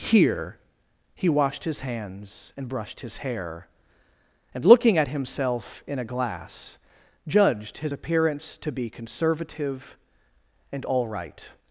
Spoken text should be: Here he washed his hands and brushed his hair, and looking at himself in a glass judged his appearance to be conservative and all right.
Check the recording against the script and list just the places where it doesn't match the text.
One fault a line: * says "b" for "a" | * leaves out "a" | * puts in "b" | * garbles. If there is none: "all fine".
all fine